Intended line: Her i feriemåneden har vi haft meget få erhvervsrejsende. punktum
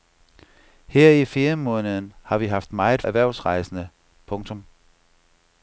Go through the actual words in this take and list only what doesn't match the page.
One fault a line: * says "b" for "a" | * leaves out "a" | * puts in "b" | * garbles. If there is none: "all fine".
* leaves out "få"